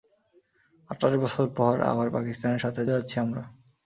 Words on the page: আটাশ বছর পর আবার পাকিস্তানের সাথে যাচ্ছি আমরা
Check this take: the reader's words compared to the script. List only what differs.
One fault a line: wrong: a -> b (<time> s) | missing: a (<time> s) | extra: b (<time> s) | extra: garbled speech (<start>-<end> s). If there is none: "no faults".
no faults